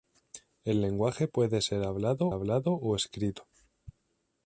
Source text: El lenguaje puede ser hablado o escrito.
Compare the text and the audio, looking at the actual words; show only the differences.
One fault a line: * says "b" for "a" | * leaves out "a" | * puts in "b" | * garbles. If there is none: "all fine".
* puts in "hablado"